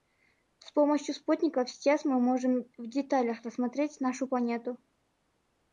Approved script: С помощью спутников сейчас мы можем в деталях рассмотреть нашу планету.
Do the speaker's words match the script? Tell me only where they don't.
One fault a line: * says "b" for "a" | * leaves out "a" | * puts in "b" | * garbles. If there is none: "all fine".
all fine